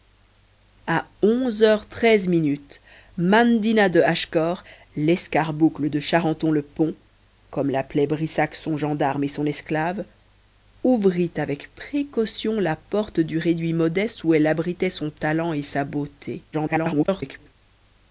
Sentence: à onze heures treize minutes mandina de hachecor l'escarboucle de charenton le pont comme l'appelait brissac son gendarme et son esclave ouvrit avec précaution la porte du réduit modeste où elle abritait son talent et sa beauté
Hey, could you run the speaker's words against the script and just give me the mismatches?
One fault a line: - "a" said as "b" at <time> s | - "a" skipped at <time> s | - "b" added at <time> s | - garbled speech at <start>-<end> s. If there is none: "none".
- garbled speech at 16.5-17.5 s